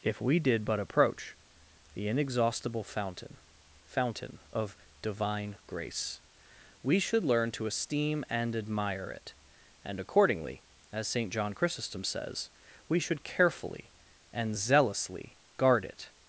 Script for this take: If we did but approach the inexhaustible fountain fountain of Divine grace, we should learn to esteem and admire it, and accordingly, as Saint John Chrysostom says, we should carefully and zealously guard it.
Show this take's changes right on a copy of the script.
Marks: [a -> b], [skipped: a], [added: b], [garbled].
If we did but approach the inexhaustible fountain fountain of Divine grace, we should learn to esteem and admire it, and accordingly, as Saint John Chrysostom says, we should carefully and zealously guard it.